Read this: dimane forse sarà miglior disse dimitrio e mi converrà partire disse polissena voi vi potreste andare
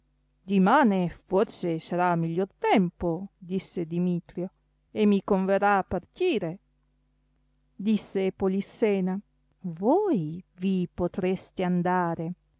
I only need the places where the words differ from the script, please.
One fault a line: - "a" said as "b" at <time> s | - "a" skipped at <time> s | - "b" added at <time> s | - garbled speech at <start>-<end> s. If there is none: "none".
- "tempo" added at 2.6 s